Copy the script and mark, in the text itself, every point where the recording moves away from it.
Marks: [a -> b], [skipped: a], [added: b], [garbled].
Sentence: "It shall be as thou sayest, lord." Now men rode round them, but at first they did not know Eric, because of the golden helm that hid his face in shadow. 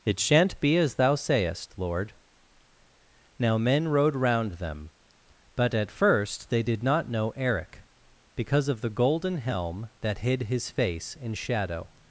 "It [shall -> shan't] be as thou sayest, lord." Now men rode round them, but at first they did not know Eric, because of the golden helm that hid his face in shadow.